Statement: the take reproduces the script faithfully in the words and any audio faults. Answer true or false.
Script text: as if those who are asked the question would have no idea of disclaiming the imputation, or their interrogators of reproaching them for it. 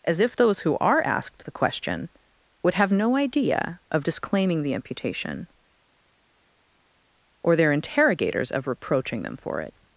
true